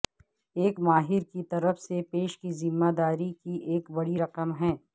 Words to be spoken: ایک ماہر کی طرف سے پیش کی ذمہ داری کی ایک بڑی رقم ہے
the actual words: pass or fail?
pass